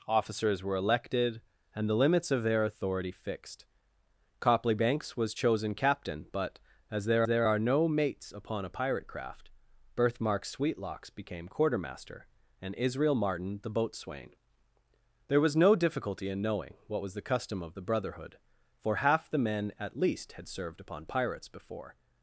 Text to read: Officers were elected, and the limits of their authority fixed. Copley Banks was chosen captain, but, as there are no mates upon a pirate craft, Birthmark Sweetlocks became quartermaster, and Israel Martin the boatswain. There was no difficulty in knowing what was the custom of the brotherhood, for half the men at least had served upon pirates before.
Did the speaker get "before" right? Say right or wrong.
right